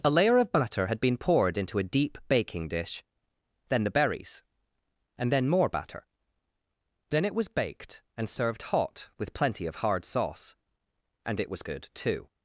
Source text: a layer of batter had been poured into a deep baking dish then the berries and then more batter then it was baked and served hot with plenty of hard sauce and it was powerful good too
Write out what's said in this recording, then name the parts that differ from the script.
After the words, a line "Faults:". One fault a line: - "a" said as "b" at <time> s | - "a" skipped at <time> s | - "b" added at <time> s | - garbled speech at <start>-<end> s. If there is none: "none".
a layer of batter had been poured into a deep baking dish then the berries and then more batter then it was baked and served hot with plenty of hard sauce and it was good too
Faults:
- "powerful" skipped at 11.6 s